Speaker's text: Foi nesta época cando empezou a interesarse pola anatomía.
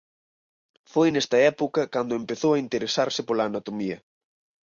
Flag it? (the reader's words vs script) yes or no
no